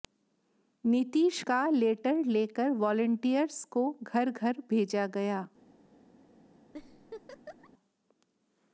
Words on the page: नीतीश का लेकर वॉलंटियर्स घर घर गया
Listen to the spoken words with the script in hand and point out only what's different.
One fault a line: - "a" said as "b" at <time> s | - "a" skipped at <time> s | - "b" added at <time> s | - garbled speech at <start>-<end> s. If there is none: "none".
- "लेटर" added at 1.7 s
- "को" added at 3.6 s
- "भेजा" added at 4.7 s